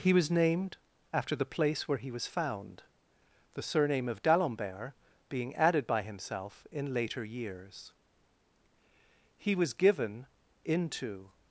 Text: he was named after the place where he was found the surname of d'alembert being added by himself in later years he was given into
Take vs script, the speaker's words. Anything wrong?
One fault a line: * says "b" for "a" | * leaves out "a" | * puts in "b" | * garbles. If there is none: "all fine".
all fine